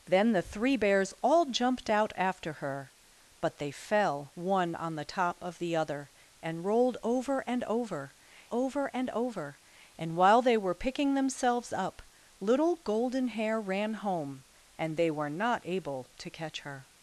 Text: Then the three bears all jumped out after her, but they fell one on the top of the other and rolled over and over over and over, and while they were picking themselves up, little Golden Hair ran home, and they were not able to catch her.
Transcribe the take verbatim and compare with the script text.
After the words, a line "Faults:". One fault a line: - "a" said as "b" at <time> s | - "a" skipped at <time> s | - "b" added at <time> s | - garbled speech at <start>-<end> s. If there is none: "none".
Then the three bears all jumped out after her, but they fell one on the top of the other and rolled over and over over and over, and while they were picking themselves up, little Golden Hair ran home, and they were not able to catch her.
Faults:
none